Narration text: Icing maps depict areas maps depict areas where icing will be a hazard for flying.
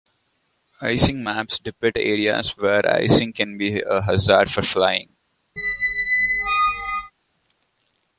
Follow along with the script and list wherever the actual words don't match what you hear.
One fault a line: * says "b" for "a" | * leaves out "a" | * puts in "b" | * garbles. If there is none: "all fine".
* leaves out "maps depict areas"
* says "can" for "will"